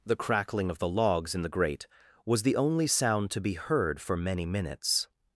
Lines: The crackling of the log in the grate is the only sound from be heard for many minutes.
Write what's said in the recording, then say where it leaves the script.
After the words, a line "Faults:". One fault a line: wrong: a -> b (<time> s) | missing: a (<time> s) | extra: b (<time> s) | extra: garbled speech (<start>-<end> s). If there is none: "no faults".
The crackling of the logs in the grate was the only sound to be heard for many minutes.
Faults:
wrong: log -> logs (0.9 s)
wrong: is -> was (2.2 s)
wrong: from -> to (3.3 s)